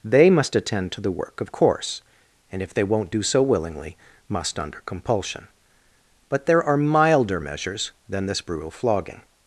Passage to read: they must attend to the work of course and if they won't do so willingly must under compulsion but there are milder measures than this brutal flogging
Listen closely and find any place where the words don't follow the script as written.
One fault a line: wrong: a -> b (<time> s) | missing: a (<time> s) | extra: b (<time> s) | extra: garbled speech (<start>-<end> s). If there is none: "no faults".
no faults